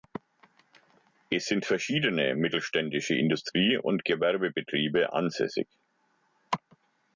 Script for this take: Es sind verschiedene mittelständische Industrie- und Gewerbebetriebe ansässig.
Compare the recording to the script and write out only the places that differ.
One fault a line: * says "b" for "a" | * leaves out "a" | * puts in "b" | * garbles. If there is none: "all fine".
all fine